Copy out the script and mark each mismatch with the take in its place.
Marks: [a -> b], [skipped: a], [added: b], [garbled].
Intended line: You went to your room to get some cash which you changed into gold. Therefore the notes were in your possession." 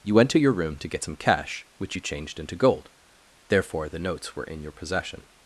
You went to your room to get some cash which you changed into gold. Therefore the notes were in your possession."